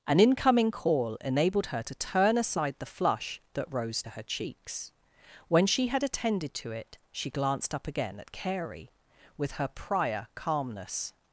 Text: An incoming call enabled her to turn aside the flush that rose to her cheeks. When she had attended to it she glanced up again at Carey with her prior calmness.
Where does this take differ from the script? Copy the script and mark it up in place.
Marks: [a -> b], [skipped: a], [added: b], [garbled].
An incoming call enabled her to turn aside the flush that rose to her cheeks. When she had attended to it she glanced up again at Carey with her prior calmness.